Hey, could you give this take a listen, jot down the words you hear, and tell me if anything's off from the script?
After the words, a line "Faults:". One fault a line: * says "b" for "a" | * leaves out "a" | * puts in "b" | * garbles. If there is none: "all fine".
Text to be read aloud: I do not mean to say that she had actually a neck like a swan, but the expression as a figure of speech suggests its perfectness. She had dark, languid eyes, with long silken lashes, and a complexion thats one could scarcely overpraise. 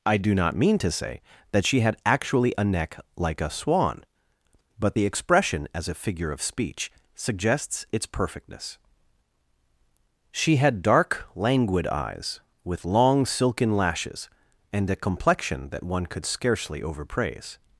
I do not mean to say that she had actually a neck like a swan, but the expression as a figure of speech suggests its perfectness. She had dark, languid eyes, with long silken lashes, and a complexion that one could scarcely overpraise.
Faults:
* says "that" for "thats"